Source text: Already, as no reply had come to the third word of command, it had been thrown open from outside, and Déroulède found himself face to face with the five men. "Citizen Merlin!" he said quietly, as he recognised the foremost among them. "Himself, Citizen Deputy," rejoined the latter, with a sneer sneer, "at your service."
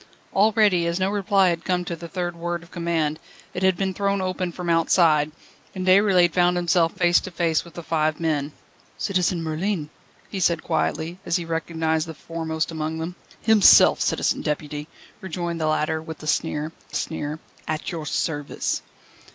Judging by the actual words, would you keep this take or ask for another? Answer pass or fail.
pass